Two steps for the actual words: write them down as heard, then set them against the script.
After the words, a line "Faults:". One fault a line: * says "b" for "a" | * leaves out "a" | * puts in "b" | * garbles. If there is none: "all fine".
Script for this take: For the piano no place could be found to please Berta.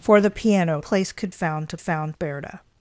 For the piano place could found to found Berta.
Faults:
* leaves out "no"
* leaves out "be"
* says "found" for "please"